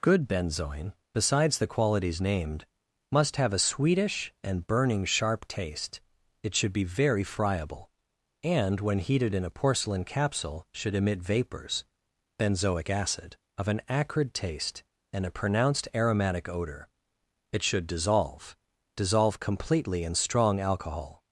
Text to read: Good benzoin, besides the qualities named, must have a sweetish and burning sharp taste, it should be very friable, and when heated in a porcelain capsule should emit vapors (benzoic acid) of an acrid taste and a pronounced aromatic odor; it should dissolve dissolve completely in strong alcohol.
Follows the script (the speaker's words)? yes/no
yes